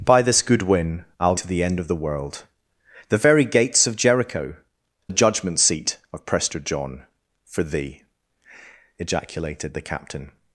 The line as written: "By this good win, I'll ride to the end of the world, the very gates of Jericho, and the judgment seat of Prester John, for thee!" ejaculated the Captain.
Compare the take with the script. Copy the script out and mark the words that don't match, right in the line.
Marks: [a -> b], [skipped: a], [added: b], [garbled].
"By this good win, I'll [skipped: ride] to the end of the world, the very gates of Jericho, [skipped: and] the judgment seat of Prester John, for thee!" ejaculated the Captain.